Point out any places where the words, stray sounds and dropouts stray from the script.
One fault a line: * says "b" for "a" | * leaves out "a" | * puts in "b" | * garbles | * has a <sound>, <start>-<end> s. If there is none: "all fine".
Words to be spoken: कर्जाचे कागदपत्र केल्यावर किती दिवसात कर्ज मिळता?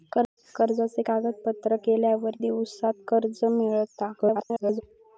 * leaves out "किती"
* garbles